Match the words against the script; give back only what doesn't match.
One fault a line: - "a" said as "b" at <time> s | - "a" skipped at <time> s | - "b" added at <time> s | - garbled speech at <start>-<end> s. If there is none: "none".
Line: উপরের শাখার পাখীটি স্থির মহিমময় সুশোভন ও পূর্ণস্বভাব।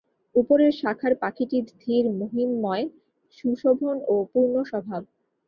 none